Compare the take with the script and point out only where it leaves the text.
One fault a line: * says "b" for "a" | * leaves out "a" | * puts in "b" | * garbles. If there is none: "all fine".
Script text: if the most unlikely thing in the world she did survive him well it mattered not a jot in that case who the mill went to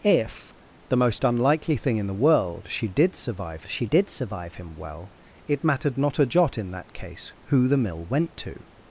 * puts in "she did survive"